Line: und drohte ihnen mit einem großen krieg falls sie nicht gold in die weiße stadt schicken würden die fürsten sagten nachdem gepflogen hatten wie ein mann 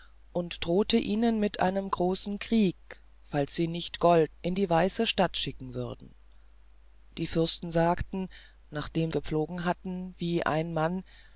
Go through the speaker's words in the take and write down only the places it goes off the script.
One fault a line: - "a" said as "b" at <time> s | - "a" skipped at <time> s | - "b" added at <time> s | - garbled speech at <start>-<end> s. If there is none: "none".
none